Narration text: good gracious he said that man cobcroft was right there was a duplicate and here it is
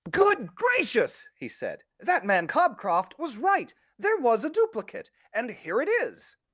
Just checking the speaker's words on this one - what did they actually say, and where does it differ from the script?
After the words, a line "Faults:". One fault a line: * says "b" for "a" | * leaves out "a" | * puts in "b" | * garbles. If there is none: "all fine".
good gracious he said that man cobcroft was right there was a duplicate and here it is
Faults:
all fine